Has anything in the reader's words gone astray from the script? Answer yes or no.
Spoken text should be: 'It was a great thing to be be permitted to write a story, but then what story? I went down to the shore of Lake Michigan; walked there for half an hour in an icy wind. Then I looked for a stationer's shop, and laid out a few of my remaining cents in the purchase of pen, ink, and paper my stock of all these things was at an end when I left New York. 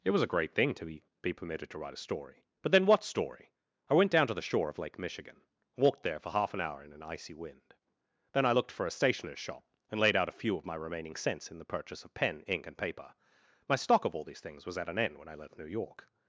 no